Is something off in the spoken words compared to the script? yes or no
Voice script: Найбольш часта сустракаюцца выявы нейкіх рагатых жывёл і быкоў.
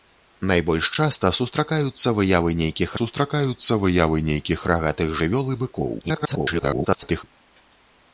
yes